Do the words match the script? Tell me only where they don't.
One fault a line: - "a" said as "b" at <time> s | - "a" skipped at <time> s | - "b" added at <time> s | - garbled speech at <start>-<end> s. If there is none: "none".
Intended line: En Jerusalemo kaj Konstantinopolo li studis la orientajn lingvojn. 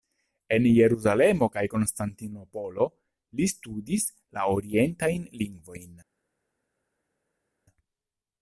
none